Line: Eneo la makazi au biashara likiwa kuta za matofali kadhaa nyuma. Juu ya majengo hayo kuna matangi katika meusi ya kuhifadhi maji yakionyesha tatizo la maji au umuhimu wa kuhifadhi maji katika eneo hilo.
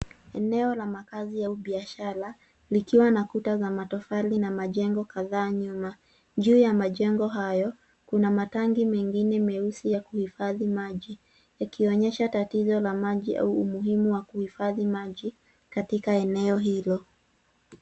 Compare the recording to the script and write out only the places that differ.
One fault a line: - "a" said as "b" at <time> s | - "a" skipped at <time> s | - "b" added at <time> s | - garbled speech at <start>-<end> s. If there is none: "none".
- "na" added at 3.1 s
- "na majengo" added at 4.4 s
- "katika" said as "mengine" at 8.9 s